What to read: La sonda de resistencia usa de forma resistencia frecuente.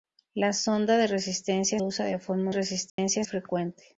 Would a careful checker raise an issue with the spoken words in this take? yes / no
no